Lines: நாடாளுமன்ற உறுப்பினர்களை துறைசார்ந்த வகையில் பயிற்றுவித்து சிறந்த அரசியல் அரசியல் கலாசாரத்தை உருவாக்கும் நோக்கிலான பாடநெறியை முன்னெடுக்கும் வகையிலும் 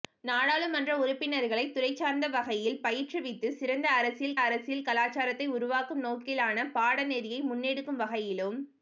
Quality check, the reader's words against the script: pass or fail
pass